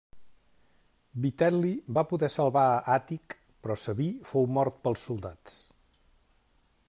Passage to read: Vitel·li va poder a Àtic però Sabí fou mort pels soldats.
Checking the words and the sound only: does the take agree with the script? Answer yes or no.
no